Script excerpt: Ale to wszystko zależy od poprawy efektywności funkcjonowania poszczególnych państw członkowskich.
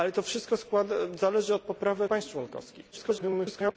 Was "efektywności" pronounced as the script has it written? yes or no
no